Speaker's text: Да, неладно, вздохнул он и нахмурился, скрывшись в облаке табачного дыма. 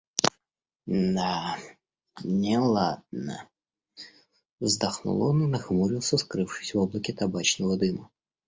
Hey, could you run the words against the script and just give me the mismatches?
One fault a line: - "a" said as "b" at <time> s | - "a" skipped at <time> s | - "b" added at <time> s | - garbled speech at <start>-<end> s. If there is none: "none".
none